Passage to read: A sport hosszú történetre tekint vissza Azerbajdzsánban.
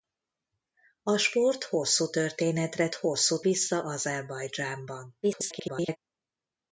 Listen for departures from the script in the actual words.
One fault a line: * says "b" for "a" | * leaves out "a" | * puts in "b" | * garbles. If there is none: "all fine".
* says "hosszú" for "tekint"
* garbles